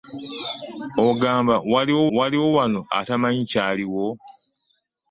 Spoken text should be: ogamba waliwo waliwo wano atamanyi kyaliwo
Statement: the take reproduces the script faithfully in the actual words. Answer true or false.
true